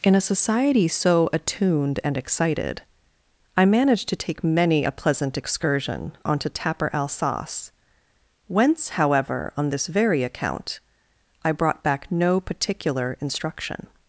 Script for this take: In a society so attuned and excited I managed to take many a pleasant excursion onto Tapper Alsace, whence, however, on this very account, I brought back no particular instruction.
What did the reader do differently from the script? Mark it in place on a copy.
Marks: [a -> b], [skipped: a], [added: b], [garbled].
In a society so attuned and excited I managed to take many a pleasant excursion onto Tapper Alsace, whence, however, on this very account, I brought back no particular instruction.